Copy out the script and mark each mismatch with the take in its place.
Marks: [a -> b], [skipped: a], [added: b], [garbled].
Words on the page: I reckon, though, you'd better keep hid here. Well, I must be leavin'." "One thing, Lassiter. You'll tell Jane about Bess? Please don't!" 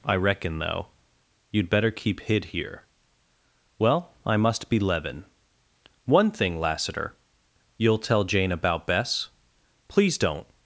I reckon, though, you'd better keep hid here. Well, I must be leavin'." "One thing, Lassiter. You'll tell Jane about Bess? Please don't!"